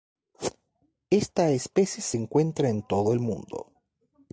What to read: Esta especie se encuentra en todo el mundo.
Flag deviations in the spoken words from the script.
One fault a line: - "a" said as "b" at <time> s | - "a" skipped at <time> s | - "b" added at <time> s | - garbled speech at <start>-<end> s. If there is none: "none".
none